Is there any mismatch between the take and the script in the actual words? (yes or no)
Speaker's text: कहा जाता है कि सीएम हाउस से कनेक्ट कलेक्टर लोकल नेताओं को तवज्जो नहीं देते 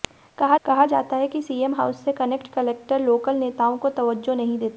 yes